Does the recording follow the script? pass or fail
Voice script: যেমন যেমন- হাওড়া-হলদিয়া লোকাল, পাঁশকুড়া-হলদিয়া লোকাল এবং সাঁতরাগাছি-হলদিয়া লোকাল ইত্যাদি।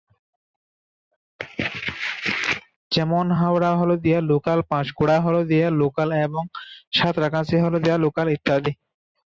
fail